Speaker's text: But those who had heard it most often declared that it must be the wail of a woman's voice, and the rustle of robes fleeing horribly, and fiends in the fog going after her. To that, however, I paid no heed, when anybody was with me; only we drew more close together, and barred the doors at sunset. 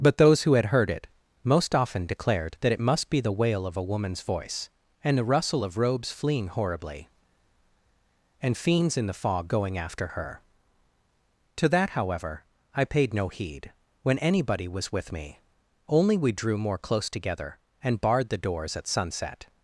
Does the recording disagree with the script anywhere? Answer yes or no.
no